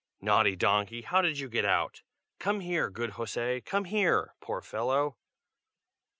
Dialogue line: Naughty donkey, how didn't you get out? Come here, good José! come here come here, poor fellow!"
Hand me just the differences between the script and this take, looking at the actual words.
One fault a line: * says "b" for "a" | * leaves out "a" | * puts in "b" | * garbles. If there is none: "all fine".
* says "did" for "didn't"
* leaves out "come here"